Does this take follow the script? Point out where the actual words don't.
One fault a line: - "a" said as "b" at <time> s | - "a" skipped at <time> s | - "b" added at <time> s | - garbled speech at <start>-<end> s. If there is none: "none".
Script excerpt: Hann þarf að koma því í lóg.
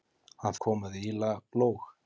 - "þarf" skipped at 0.6 s